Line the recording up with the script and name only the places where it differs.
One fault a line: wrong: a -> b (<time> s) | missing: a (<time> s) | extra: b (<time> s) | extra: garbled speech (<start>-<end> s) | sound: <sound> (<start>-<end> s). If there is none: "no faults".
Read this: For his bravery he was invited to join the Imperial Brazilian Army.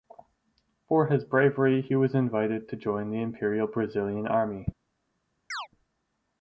sound: chirp (5.5-5.7 s)